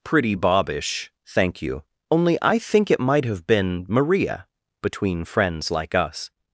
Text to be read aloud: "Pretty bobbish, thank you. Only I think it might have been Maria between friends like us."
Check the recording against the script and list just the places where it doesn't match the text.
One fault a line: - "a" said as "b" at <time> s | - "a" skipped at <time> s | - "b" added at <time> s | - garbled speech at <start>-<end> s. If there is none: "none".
none